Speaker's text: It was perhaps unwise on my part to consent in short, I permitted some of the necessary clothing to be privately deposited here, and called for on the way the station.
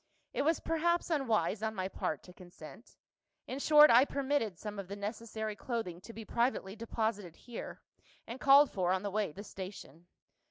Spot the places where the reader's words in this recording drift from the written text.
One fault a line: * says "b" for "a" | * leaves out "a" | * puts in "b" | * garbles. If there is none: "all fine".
all fine